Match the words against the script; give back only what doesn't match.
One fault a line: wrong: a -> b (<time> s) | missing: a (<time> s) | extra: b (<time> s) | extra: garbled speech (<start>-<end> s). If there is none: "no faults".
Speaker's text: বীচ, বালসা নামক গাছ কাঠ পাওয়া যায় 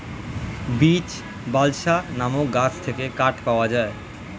extra: থেকে (2.8 s)